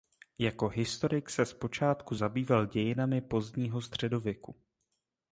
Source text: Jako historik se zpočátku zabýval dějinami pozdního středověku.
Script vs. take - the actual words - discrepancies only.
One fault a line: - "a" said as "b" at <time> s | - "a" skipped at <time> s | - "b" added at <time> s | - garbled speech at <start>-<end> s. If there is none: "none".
none